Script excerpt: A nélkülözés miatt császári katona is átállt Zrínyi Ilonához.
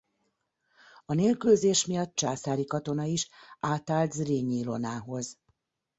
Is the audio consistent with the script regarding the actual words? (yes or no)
yes